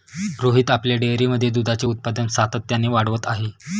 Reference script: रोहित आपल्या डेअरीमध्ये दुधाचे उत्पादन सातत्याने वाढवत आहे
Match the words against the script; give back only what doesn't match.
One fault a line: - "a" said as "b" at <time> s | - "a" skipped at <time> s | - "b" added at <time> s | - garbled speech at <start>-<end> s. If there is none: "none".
none